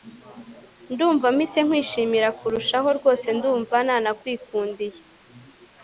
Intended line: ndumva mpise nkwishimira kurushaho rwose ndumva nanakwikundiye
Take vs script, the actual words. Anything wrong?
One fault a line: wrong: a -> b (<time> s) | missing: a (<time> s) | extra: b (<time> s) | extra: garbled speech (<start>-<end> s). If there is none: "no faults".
no faults